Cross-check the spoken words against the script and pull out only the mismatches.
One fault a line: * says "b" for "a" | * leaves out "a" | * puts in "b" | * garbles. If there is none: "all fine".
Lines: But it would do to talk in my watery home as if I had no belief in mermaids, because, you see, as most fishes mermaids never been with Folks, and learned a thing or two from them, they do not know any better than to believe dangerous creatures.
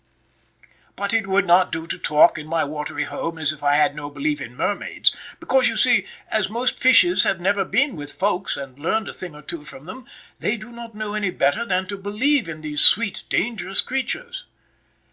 * puts in "not"
* says "have" for "mermaids"
* puts in "in these sweet"